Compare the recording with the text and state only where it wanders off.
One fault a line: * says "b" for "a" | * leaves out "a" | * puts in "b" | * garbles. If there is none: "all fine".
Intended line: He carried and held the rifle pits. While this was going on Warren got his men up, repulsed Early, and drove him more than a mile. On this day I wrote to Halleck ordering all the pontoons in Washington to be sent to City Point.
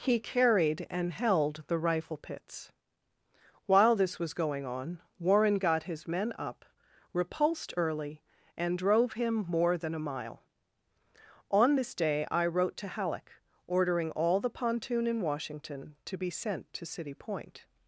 * says "pontoon" for "pontoons"